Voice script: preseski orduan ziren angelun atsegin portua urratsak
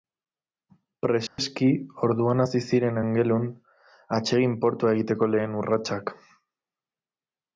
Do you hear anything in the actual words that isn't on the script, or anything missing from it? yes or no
yes